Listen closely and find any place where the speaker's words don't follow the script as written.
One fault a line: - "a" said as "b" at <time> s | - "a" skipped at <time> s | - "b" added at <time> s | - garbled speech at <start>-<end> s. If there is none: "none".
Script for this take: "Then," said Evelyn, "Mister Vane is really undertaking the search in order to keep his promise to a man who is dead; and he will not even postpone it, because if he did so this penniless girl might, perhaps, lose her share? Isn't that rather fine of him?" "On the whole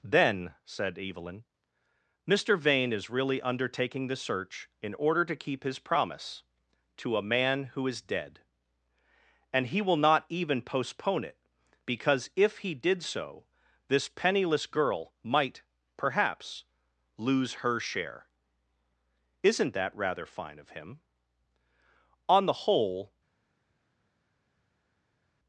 none